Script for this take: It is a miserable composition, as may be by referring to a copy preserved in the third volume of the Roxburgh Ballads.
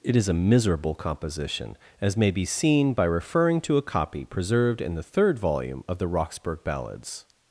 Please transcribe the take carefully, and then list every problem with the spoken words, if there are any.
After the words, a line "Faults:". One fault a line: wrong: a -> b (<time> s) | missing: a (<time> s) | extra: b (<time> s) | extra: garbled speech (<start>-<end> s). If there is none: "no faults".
It is a miserable composition, as may be seen by referring to a copy preserved in the third volume of the Roxburgh Ballads.
Faults:
extra: seen (2.4 s)